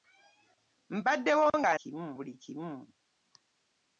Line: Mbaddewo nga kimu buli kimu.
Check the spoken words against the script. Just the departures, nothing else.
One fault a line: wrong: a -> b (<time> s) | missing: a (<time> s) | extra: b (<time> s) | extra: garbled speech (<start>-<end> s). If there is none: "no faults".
no faults